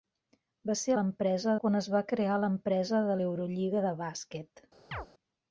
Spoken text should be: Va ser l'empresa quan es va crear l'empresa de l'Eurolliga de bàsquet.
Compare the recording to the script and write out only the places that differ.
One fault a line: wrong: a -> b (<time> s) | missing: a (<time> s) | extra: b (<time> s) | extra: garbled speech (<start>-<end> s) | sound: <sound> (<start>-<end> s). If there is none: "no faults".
sound: chirp (4.9-5.1 s)